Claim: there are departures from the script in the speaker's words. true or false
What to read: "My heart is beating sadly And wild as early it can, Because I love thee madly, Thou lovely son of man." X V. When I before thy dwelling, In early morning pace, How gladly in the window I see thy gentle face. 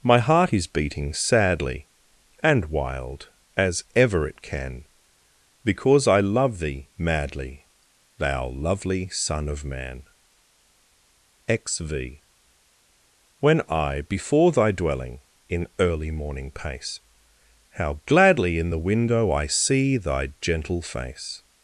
true